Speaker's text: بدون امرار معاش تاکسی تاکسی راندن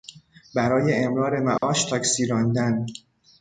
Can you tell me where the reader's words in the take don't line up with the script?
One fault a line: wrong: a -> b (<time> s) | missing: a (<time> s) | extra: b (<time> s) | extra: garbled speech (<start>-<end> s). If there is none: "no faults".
wrong: بدون -> برای (0.6 s)
missing: تاکسی (2.3 s)